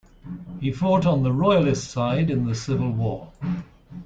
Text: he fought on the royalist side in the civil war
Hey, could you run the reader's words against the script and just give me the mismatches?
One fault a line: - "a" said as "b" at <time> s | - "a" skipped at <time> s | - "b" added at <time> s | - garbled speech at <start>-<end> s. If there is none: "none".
none